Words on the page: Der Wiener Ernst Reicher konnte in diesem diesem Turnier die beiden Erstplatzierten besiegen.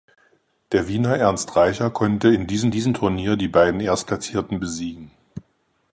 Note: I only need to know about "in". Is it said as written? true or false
true